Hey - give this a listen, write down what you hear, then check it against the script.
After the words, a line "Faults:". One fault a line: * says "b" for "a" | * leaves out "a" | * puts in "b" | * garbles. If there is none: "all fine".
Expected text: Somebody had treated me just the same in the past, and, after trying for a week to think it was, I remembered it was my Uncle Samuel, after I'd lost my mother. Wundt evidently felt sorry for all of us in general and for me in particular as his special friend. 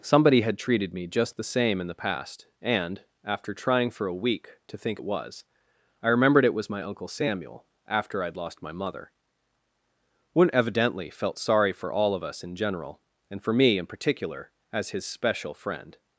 Somebody had treated me just the same in the past, and, after trying for a week to think it was, I remembered it was my Uncle Samuel, after I'd lost my mother. Wundt evidently felt sorry for all of us in general and for me in particular as his special friend.
Faults:
all fine